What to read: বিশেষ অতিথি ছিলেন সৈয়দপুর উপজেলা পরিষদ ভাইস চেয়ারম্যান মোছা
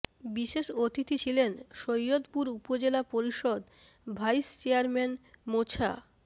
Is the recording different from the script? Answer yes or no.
no